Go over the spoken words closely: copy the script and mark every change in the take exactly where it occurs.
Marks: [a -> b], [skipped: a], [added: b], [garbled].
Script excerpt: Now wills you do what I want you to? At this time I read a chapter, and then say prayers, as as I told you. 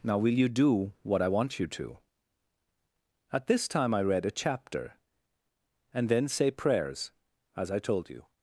Now [wills -> will] you do what I want you to? At this time I read a chapter, and then say prayers, as [skipped: as] I told you.